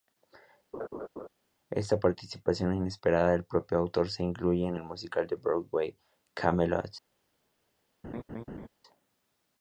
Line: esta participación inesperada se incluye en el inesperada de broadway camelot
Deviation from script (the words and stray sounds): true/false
true